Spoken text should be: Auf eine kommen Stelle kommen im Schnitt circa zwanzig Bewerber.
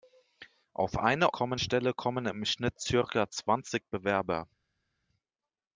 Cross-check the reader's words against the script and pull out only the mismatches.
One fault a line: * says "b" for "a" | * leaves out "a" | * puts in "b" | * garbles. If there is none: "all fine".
all fine